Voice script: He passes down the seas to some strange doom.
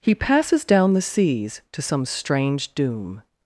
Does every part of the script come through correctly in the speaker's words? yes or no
yes